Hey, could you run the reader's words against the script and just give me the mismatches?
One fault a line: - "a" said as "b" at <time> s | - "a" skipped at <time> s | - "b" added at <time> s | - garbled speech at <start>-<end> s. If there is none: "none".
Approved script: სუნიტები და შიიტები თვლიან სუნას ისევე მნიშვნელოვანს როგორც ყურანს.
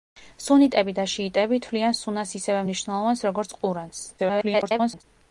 - garbled speech at 4.2-5.0 s